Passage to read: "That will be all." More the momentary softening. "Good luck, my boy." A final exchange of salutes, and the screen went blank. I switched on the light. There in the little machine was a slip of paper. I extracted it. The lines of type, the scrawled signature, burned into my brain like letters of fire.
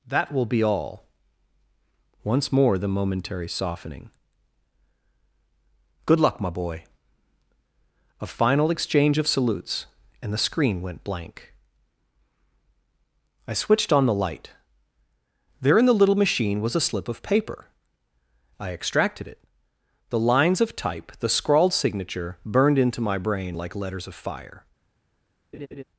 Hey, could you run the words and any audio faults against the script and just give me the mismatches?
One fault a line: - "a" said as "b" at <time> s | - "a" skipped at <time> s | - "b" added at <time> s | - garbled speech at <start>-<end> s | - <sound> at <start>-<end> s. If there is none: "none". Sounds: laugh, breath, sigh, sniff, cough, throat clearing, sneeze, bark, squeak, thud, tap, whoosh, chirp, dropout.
- "Once" added at 2.2 s
- laugh at 25.5-25.8 s